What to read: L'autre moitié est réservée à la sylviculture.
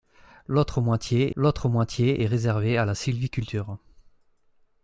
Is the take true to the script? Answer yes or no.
no